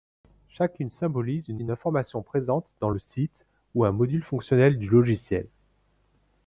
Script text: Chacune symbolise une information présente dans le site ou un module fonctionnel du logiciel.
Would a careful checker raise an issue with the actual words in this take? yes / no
yes